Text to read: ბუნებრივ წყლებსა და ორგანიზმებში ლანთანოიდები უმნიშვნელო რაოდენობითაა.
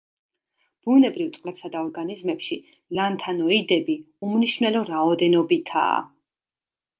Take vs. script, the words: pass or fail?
pass